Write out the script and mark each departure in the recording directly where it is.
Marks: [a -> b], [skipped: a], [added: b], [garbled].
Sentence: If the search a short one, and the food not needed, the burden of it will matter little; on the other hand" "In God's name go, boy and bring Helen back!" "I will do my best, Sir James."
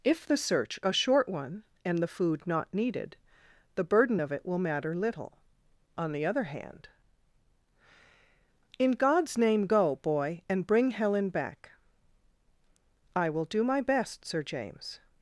If the search a short one, and the food not needed, the burden of it will matter little; on the other hand" "In God's name go, boy and bring Helen back!" "I will do my best, Sir James."